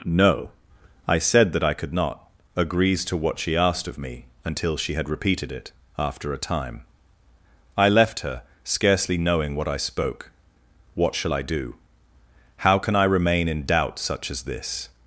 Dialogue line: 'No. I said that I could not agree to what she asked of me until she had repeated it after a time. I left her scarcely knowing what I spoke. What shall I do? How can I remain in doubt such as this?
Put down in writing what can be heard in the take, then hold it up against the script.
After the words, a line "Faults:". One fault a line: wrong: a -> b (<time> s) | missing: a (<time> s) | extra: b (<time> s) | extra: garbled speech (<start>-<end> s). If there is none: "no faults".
'No. I said that I could not agrees to what she asked of me until she had repeated it after a time. I left her scarcely knowing what I spoke. What shall I do? How can I remain in doubt such as this?
Faults:
wrong: agree -> agrees (2.5 s)